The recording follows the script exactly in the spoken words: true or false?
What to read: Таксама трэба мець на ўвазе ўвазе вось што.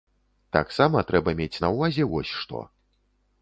false